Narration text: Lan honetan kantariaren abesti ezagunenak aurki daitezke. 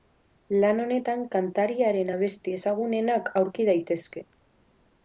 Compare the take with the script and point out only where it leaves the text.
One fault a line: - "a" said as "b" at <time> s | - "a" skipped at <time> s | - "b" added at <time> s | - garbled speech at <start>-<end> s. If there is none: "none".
none